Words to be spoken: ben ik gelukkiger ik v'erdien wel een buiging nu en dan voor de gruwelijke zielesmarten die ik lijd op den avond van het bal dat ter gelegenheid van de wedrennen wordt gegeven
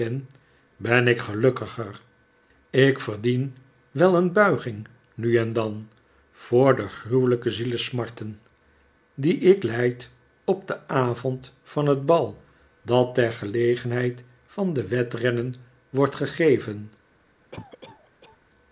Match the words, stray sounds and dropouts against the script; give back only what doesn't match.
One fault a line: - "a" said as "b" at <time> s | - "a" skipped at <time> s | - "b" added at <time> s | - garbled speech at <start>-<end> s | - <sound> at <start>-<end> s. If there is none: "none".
- cough at 17.5-18.4 s